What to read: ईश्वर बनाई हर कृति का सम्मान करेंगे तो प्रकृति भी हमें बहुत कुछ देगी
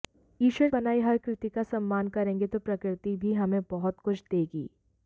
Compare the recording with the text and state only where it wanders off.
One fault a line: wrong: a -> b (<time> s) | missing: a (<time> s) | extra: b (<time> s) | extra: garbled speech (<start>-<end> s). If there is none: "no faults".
no faults